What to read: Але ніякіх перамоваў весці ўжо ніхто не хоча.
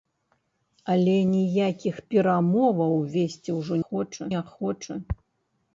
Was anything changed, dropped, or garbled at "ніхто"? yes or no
yes